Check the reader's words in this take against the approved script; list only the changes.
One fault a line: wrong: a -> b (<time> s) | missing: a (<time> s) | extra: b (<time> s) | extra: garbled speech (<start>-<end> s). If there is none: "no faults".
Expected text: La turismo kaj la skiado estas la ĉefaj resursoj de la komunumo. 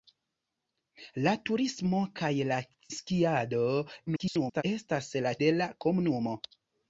extra: garbled speech (4.1-4.6 s)
missing: ĉefaj resursoj (5.3 s)